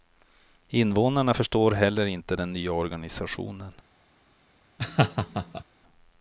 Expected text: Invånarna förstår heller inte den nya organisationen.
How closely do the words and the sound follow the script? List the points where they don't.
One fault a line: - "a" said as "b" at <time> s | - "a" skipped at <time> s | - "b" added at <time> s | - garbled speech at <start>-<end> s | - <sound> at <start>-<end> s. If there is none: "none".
- laugh at 4.8-5.6 s